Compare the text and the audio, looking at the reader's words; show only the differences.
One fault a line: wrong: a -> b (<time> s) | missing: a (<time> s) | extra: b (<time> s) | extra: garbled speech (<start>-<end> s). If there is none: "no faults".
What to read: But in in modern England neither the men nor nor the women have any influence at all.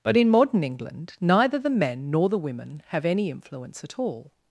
missing: in (0.3 s)
missing: nor (2.3 s)